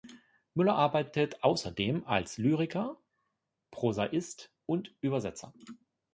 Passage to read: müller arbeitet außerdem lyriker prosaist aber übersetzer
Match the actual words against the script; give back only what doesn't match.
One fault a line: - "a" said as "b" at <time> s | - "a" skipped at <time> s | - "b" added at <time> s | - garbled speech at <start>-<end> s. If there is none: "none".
- "als" added at 2.0 s
- "aber" said as "und" at 4.7 s